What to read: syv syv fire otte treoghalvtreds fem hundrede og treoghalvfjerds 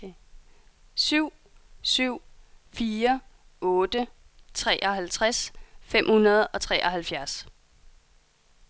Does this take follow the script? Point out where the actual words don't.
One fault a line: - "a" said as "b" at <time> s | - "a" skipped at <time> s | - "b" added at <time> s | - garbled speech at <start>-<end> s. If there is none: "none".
none